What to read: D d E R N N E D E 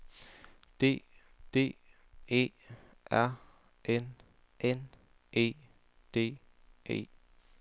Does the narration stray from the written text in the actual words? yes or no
no